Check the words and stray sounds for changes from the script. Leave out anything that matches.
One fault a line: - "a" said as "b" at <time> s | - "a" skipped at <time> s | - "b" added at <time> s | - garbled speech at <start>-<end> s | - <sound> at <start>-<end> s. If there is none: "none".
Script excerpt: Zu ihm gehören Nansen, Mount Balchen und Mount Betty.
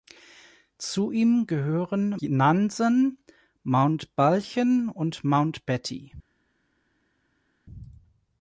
none